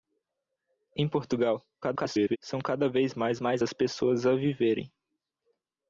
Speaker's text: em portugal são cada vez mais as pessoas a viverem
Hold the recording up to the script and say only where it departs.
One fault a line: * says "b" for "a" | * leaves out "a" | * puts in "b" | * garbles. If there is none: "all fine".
* garbles
* puts in "mais"